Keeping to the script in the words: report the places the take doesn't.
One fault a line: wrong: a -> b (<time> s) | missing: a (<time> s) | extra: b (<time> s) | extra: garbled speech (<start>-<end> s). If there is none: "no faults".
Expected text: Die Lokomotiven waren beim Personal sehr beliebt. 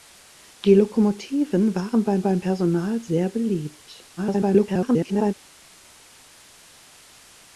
extra: beim (2.2 s)
extra: garbled speech (4.2-5.3 s)